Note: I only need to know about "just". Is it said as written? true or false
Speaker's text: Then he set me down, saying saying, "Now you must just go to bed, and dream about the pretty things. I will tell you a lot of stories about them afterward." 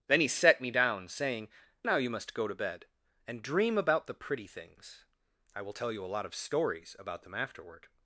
false